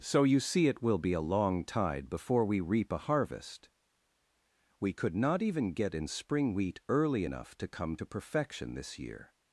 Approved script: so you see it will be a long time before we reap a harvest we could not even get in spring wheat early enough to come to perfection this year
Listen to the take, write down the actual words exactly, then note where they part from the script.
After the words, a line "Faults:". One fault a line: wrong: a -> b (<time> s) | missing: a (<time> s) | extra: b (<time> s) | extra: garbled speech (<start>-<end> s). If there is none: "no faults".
so you see it will be a long tide before we reap a harvest we could not even get in spring wheat early enough to come to perfection this year
Faults:
wrong: time -> tide (1.6 s)